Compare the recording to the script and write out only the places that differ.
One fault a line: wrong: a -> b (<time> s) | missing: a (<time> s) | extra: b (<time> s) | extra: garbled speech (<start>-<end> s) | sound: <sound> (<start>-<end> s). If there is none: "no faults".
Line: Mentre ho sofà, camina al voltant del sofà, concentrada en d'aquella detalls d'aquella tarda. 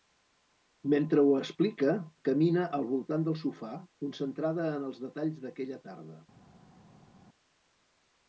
wrong: sofà -> explica (1.4 s)
wrong: d'aquella -> els (4.9 s)